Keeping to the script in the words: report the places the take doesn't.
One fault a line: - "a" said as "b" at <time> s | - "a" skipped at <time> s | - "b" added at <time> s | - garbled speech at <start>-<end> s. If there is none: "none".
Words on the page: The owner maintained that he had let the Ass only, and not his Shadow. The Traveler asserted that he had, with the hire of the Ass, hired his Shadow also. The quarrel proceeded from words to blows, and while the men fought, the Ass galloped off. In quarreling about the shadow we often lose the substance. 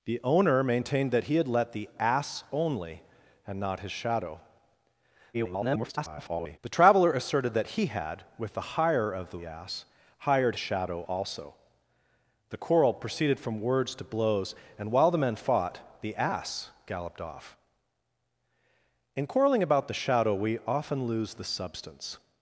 - garbled speech at 5.3-6.6 s
- "his" skipped at 10.6 s